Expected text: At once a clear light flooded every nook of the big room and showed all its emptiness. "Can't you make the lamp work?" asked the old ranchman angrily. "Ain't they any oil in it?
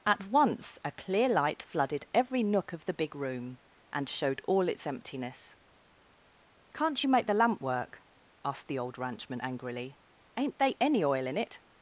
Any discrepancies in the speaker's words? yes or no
no